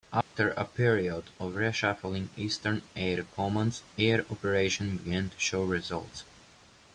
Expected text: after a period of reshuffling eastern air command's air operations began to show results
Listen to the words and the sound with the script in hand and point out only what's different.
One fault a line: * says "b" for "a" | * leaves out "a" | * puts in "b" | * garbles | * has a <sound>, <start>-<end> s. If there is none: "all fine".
* has a dropout, 0.2-0.3 s